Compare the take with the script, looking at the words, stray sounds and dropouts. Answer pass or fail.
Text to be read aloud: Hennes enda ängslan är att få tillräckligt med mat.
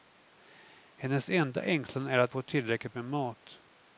pass